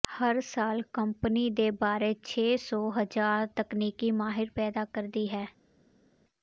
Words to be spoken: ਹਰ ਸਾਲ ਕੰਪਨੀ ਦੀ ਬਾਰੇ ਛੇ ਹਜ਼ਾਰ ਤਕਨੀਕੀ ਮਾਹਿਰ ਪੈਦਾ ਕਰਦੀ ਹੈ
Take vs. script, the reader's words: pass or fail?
fail